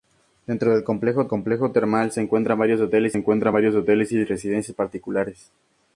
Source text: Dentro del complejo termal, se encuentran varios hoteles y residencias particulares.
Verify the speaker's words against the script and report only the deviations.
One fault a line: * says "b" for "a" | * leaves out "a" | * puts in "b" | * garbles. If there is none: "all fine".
* puts in "complejo"
* puts in "encuentran varios hoteles"